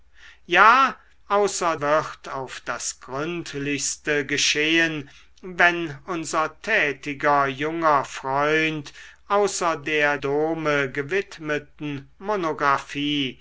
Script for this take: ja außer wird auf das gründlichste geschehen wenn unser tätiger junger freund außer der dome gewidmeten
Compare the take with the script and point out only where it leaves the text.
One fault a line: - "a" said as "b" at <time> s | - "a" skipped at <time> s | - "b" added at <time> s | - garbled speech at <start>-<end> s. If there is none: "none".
none